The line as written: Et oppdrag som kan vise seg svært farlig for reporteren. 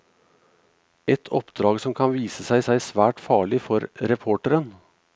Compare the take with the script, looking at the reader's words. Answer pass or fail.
fail